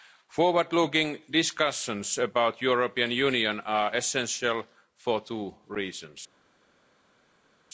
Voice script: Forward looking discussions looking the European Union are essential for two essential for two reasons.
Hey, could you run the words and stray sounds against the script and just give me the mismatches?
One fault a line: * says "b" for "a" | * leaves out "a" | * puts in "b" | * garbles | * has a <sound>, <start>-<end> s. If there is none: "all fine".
* says "about" for "looking"
* leaves out "essential for two"